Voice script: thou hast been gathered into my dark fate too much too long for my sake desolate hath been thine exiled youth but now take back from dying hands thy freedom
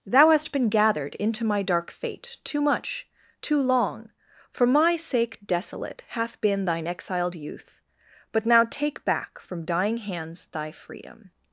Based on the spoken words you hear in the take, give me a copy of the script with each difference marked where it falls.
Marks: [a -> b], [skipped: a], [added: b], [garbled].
thou hast been gathered into my dark fate too much too long for my sake desolate hath been thine exiled youth but now take back from dying hands thy freedom